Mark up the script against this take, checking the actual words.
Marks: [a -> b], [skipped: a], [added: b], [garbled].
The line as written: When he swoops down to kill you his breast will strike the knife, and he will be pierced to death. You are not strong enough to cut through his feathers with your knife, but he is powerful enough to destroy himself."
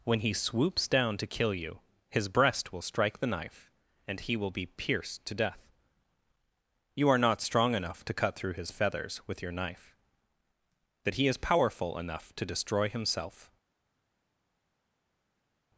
When he swoops down to kill you his breast will strike the knife, and he will be pierced to death. You are not strong enough to cut through his feathers with your knife, [but -> that] he is powerful enough to destroy himself."